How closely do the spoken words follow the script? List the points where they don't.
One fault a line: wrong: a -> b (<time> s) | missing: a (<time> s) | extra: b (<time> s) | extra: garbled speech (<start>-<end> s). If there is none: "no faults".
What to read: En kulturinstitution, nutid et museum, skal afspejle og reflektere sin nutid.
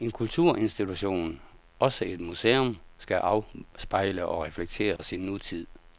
wrong: nutid -> også (1.8 s)